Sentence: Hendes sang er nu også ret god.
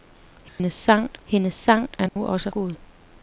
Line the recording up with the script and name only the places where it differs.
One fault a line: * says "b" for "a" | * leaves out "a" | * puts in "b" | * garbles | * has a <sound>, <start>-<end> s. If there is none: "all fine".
* has a dropout, 0.5-0.6 s
* puts in "hendes sang"
* has a dropout, 2.1-2.2 s
* leaves out "ret"